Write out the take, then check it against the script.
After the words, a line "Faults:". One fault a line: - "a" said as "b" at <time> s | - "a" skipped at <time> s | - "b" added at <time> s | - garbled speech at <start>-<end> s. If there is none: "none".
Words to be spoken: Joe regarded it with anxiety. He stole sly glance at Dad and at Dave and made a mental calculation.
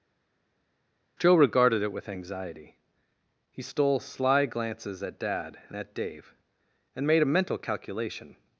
Joe regarded it with anxiety. He stole sly glances at Dad and at Dave and made a mental calculation.
Faults:
- "glance" said as "glances" at 4.5 s